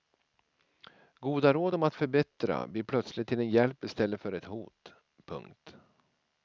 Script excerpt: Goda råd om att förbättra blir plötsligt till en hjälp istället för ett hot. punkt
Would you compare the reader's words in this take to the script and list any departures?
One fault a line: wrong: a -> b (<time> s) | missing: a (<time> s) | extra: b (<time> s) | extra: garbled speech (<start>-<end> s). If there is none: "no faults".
no faults